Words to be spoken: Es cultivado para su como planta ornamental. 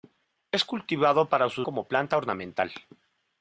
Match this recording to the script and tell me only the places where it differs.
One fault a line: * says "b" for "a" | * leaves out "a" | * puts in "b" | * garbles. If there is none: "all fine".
all fine